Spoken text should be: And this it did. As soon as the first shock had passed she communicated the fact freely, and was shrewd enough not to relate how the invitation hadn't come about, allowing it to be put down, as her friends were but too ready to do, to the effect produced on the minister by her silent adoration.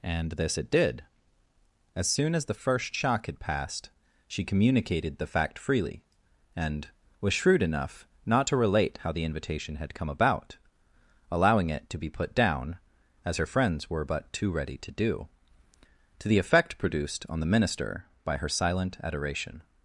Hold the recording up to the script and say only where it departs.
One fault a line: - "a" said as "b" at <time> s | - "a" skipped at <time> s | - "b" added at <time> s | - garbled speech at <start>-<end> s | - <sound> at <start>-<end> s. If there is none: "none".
- "hadn't" said as "had" at 9.8 s